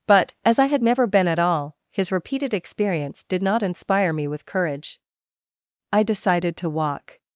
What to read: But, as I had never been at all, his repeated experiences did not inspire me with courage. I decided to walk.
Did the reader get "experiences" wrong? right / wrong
wrong